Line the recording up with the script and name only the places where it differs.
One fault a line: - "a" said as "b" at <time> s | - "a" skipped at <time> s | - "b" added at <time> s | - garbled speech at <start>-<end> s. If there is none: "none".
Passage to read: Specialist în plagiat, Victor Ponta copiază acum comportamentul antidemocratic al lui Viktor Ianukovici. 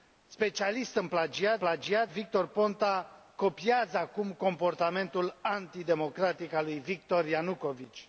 - "plagiat" added at 1.6 s